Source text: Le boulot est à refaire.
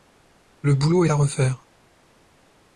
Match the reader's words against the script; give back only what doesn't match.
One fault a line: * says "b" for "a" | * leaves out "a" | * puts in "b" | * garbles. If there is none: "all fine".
* leaves out "est"